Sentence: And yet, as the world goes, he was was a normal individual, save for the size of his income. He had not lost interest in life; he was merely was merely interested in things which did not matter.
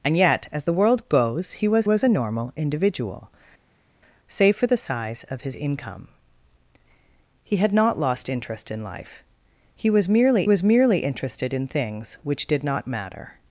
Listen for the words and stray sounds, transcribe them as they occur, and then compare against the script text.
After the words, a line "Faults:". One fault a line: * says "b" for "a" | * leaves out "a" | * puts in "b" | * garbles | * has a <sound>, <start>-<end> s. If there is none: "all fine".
And yet, as the world goes, he was was a normal individual, save for the size of his income. He had not lost interest in life; he was merely was merely interested in things which did not matter.
Faults:
all fine